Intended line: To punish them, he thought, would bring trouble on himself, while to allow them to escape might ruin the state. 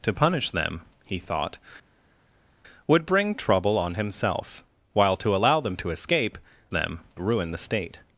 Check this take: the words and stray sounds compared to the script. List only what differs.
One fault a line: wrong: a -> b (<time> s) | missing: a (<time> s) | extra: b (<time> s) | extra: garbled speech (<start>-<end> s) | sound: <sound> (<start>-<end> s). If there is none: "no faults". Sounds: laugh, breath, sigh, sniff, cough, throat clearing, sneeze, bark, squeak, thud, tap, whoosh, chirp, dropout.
wrong: might -> them (6.7 s)